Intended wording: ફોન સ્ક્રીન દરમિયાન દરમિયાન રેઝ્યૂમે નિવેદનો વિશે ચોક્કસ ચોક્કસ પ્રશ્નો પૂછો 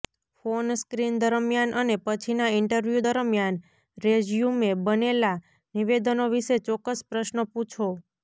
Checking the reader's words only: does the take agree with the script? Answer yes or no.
no